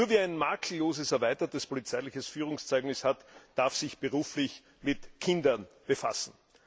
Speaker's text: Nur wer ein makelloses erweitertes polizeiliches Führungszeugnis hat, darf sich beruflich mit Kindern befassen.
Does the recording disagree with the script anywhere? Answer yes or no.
no